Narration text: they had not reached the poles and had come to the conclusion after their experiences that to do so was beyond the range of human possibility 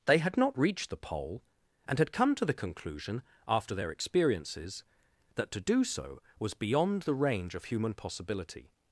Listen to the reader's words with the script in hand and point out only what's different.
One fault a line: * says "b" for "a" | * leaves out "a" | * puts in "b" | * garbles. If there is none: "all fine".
* says "pole" for "poles"